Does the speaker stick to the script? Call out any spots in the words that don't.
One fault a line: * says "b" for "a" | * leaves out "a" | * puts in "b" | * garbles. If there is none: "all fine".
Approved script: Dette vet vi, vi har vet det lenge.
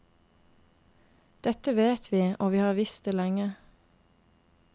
* puts in "og"
* says "visst" for "vet"